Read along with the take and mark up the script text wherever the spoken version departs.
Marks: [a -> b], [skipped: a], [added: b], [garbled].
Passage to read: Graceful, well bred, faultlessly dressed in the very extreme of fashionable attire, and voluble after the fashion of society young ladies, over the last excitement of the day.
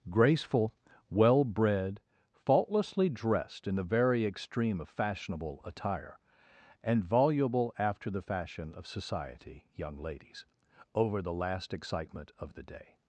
Graceful, well bred, faultlessly dressed in the very extreme of fashionable attire, and voluble after the fashion of society young ladies, over the last excitement of the day.